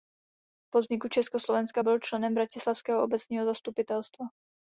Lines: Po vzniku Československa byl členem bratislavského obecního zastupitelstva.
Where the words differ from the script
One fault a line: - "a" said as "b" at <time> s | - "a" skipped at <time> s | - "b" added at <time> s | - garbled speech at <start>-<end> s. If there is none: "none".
none